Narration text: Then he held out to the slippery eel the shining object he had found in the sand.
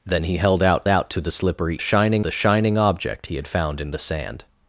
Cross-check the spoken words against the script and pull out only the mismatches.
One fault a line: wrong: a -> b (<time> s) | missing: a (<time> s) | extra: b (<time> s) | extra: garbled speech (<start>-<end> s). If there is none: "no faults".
extra: out (0.9 s)
wrong: eel -> shining (1.8 s)